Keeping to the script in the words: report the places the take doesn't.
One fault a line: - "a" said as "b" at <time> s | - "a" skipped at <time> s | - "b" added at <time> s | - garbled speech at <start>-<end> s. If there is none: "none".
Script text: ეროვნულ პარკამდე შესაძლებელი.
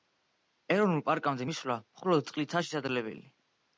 - "მისვლა მხოლოდ წყლითაა" added at 1.5 s